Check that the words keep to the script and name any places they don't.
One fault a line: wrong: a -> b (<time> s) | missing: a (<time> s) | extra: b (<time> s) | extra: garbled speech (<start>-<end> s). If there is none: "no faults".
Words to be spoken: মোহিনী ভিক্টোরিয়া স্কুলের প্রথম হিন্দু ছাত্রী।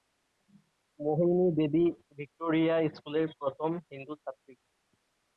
extra: দেবী (1.6 s)